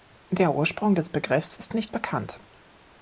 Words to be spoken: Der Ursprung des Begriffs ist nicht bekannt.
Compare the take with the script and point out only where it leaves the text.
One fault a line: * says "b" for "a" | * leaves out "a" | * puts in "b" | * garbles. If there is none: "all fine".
all fine